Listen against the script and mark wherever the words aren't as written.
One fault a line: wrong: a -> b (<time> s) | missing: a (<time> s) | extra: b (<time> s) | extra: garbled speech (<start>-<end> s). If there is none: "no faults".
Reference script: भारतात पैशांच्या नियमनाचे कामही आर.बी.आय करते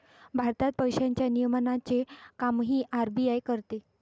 no faults